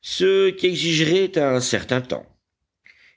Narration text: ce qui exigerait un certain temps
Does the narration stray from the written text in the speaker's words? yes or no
no